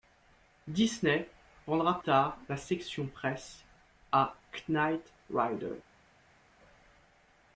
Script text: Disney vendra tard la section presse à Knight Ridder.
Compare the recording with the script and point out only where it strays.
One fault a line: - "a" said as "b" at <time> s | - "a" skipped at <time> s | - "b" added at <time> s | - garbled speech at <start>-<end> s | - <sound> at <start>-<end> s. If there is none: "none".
none